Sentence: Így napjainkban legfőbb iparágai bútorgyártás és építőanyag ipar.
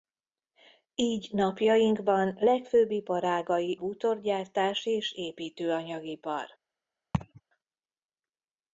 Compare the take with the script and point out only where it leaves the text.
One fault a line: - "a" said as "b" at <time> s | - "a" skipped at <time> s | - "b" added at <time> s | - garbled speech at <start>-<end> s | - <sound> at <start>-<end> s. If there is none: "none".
- laugh at 7.1-7.4 s